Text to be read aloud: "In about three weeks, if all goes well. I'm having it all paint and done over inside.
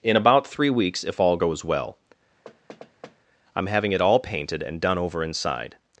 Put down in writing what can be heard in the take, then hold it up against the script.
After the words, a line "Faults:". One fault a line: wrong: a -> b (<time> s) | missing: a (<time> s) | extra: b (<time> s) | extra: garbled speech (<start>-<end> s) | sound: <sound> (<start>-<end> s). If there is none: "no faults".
"In about three weeks, if all goes well. I'm having it all painted and done over inside.
Faults:
sound: thud (2.4-3.2 s)
wrong: paint -> painted (4.2 s)